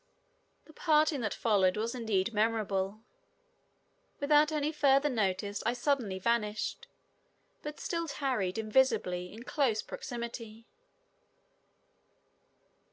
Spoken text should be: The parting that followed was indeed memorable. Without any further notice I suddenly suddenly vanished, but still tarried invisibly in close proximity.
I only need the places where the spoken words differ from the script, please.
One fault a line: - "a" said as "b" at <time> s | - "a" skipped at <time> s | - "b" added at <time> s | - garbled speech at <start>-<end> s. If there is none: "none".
- "suddenly" skipped at 6.2 s